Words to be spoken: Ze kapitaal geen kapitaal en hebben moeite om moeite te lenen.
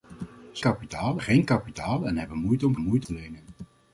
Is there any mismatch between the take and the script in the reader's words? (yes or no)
no